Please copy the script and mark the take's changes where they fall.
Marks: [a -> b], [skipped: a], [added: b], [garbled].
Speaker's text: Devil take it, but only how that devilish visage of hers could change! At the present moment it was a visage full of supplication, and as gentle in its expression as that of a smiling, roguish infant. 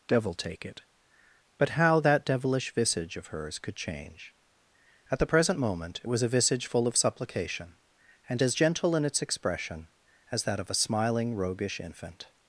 Devil take it, but [skipped: only] how that devilish visage of hers could change! At the present moment it was a visage full of supplication, and as gentle in its expression as that of a smiling, roguish infant.